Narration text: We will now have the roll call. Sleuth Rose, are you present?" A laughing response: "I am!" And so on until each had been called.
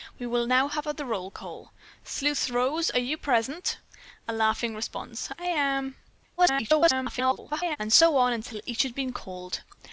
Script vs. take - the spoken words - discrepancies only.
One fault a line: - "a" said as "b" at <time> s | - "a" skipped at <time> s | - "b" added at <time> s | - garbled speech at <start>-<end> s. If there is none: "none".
- garbled speech at 6.4-7.8 s